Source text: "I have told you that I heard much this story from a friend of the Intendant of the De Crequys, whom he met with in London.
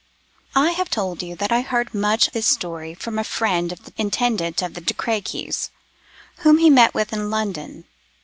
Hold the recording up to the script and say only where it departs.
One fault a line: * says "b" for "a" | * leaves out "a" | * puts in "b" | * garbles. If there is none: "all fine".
all fine